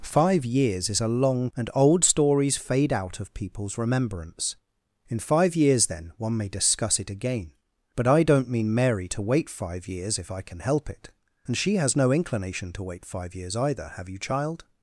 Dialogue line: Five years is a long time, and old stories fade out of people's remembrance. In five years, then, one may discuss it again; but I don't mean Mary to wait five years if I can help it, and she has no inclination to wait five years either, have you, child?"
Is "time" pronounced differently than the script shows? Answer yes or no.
yes